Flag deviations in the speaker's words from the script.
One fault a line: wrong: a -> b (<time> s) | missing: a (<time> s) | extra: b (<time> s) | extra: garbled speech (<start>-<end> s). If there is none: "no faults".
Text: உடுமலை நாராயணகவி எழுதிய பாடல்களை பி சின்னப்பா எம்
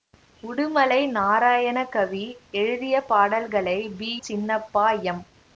no faults